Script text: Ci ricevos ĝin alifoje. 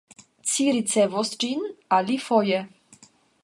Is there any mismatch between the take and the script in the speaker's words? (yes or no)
no